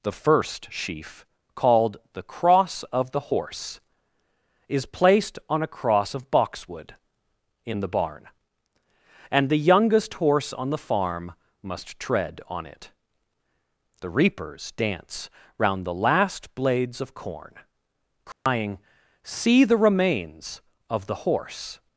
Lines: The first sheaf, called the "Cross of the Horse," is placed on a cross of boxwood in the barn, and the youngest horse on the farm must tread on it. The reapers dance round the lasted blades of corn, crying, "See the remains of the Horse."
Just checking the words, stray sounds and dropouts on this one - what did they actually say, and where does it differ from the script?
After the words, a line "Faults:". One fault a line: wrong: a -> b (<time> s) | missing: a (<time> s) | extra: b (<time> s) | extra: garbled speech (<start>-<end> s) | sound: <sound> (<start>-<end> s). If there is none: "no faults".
The first sheaf, called the "Cross of the Horse," is placed on a cross of boxwood in the barn, and the youngest horse on the farm must tread on it. The reapers dance round the last blades of corn, crying, "See the remains of the Horse."
Faults:
wrong: lasted -> last (16.0 s)
sound: dropout (18.3-18.5 s)